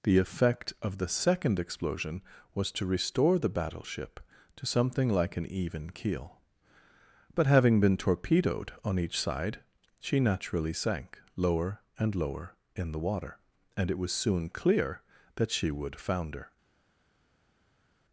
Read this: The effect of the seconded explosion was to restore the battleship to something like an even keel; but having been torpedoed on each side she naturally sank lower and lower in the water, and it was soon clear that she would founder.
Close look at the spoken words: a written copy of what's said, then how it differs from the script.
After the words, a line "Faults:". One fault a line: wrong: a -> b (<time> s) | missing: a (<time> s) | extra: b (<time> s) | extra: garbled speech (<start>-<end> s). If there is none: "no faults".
The effect of the second explosion was to restore the battleship to something like an even keel; but having been torpedoed on each side she naturally sank lower and lower in the water, and it was soon clear that she would founder.
Faults:
wrong: seconded -> second (1.1 s)